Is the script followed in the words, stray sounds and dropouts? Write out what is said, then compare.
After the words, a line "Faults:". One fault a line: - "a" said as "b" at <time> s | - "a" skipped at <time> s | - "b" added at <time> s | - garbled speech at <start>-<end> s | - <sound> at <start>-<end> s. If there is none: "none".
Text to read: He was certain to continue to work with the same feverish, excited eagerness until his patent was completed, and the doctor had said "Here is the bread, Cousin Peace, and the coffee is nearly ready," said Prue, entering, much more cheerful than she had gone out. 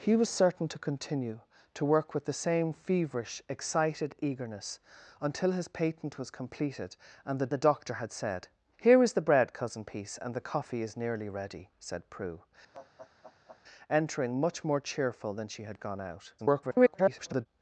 He was certain to continue to work with the same feverish, excited eagerness until his patent was completed, and the the doctor had said "Here is the bread, Cousin Peace, and the coffee is nearly ready," said Prue, entering, much more cheerful than she had gone out. [garbled]
Faults:
- "the" added at 7.5 s
- laugh at 12.7-13.6 s
- garbled speech at 16.4-17.5 s